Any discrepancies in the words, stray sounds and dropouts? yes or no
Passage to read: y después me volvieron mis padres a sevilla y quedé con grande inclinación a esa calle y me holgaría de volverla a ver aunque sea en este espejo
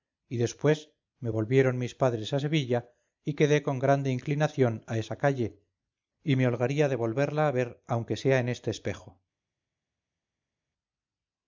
no